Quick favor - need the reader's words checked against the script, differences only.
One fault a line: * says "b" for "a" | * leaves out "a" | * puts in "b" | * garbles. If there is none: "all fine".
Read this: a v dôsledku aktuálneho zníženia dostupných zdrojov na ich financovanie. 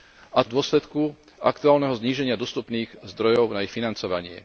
all fine